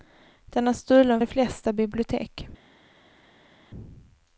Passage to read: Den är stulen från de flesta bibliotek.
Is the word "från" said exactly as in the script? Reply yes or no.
no